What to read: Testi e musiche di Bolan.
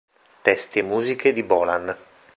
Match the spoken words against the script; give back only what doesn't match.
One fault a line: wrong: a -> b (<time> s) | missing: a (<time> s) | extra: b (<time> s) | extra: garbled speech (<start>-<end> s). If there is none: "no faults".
no faults